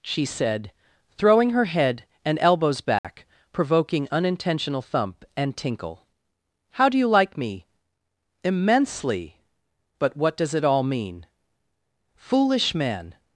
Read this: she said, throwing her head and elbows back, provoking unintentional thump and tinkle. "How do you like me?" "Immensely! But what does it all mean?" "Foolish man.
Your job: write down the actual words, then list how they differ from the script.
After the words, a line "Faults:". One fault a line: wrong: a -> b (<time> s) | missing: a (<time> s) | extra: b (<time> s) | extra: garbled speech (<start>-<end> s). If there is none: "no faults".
she said, throwing her head and elbows back, provoking unintentional thump and tinkle. "How do you like me?" "Immensely! But what does it all mean?" "Foolish man.
Faults:
no faults